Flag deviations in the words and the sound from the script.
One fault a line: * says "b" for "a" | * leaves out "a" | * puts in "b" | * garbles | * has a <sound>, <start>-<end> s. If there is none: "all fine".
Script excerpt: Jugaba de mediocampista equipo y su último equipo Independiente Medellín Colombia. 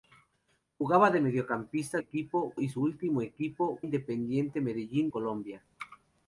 all fine